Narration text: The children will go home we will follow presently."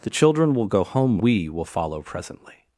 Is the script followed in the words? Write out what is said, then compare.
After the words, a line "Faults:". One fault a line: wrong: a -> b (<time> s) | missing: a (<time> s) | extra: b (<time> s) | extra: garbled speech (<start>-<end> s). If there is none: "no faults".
The children will go home we will follow presently."
Faults:
no faults